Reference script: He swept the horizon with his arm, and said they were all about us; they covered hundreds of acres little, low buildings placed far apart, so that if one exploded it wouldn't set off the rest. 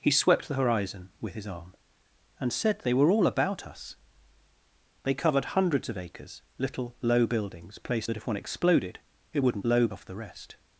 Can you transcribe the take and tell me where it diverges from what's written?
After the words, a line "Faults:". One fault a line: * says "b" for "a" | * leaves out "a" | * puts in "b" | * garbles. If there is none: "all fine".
He swept the horizon with his arm, and said they were all about us; they covered hundreds of acres little, low buildings placed that if one exploded it wouldn't low off the rest.
Faults:
* leaves out "far apart so"
* says "low" for "set"